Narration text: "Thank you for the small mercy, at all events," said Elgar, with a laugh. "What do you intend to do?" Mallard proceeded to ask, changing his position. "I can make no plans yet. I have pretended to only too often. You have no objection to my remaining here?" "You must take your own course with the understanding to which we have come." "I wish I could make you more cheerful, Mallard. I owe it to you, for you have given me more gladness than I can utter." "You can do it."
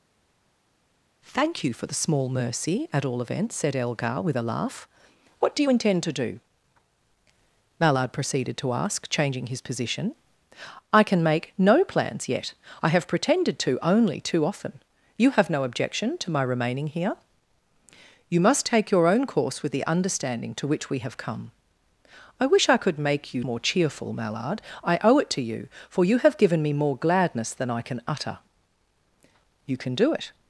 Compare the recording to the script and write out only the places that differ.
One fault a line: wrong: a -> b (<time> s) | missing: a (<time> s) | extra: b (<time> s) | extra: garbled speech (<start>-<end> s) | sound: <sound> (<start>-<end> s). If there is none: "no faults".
no faults